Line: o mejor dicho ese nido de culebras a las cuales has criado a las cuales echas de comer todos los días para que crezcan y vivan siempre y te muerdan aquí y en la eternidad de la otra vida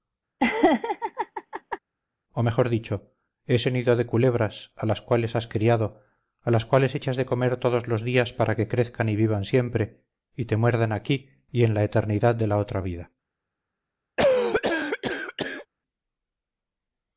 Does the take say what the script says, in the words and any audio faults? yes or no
no